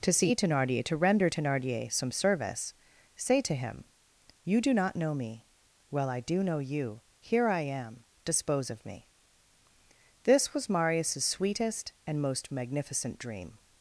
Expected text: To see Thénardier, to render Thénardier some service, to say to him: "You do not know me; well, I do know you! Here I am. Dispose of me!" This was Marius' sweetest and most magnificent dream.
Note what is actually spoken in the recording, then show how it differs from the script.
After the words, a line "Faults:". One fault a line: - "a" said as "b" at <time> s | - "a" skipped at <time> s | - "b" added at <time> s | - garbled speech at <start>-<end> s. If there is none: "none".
To see Thénardier, to render Thénardier some service, say to him: "You do not know me; well, I do know you! Here I am. Dispose of me!" This was Marius' sweetest and most magnificent dream.
Faults:
- "to" skipped at 2.7 s